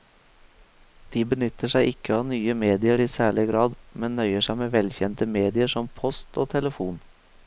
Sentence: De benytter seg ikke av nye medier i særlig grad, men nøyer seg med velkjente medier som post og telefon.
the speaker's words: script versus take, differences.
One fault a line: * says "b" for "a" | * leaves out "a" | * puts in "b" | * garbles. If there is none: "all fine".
all fine